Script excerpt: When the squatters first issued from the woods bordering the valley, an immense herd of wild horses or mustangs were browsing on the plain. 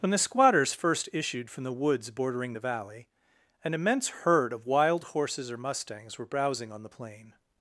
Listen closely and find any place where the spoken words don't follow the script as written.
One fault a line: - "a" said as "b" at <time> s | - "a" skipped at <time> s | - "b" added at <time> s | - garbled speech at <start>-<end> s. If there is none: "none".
none